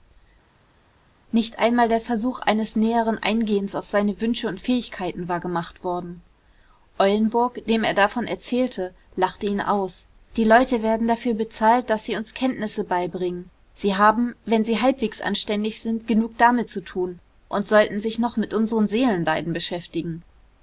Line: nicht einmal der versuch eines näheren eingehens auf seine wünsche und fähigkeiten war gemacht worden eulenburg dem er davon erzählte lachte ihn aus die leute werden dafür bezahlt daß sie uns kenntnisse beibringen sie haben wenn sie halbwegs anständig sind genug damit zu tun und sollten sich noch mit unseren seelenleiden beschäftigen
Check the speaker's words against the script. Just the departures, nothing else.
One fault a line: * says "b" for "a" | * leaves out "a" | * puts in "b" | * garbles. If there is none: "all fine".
all fine